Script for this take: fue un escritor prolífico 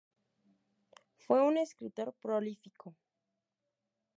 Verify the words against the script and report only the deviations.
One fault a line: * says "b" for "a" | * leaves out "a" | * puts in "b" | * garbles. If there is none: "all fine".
all fine